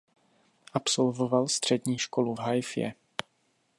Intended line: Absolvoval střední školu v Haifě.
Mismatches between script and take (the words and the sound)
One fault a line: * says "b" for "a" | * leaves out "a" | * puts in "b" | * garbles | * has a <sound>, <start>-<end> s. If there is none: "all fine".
all fine